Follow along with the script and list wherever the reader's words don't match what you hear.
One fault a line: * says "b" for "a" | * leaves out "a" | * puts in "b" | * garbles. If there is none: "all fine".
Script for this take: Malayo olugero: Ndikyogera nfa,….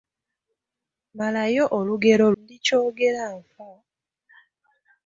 all fine